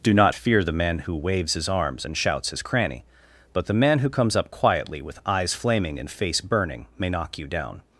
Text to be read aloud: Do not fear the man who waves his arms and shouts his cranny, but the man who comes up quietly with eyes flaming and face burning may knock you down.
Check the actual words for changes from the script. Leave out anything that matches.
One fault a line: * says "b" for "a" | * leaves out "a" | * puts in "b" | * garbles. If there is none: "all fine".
all fine